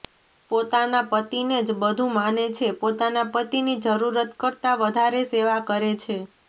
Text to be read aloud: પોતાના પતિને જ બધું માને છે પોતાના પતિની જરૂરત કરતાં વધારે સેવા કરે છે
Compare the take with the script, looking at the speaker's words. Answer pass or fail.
pass